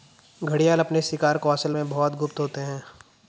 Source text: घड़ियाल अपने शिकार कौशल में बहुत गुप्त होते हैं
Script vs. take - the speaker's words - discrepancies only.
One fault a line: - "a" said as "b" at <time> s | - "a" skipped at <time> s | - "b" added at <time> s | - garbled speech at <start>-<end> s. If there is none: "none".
none